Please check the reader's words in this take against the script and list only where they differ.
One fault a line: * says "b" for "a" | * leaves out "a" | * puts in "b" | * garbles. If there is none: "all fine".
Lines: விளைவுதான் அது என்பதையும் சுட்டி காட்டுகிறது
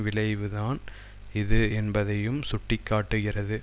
* says "இது" for "அது"